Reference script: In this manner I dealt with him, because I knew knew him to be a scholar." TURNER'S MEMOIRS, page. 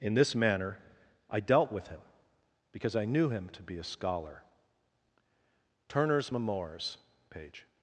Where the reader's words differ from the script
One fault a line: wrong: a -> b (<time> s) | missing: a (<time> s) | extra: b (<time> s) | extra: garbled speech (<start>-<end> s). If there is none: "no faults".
missing: knew (3.3 s)